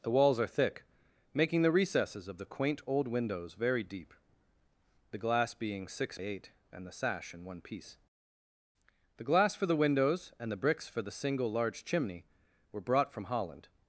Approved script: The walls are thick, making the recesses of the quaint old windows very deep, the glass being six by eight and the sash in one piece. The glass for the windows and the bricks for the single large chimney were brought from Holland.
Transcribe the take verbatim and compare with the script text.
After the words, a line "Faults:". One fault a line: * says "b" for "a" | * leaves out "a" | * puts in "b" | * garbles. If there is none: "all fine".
The walls are thick, making the recesses of the quaint old windows very deep, the glass being six eight and the sash in one piece. The glass for the windows and the bricks for the single large chimney were brought from Holland.
Faults:
* leaves out "by"